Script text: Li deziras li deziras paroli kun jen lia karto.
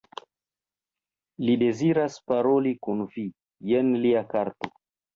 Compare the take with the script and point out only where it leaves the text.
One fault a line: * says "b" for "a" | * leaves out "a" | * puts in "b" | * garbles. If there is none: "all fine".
* leaves out "li deziras"
* puts in "vi"